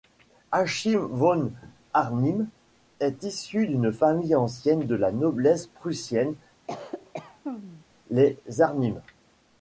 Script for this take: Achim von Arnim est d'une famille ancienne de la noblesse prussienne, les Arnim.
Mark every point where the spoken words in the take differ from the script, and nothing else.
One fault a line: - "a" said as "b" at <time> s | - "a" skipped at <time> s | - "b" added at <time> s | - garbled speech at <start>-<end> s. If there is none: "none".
- "issu" added at 3.2 s